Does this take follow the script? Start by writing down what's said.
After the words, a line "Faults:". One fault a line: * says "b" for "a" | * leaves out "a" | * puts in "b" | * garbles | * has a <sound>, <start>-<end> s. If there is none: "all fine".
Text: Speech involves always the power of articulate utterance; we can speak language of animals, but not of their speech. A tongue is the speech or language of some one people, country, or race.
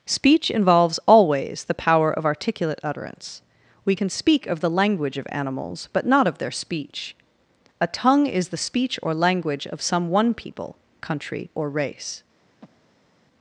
Speech involves always the power of articulate utterance; we can speak of the language of animals, but not of their speech. A tongue is the speech or language of some one people, country, or race.
Faults:
* puts in "of the"
* has a breath, 12.6-13.1 s